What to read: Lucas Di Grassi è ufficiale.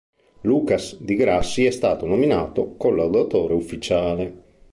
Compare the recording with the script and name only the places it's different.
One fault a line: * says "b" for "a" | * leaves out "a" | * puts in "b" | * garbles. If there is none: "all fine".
* puts in "stato nominato collaudatore"